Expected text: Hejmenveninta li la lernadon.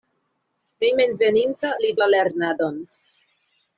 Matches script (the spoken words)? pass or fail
pass